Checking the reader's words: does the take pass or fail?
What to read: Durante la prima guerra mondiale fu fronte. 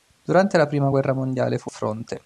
pass